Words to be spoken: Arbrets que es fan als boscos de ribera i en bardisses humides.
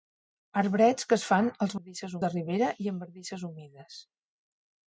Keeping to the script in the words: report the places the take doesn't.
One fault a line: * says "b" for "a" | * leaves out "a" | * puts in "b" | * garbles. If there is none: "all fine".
* says "bardisses" for "boscos"